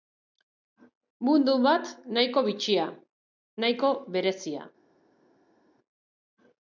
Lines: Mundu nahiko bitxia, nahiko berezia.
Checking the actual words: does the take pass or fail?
fail